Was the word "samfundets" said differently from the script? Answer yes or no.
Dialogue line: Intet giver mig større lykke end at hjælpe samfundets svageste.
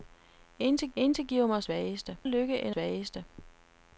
yes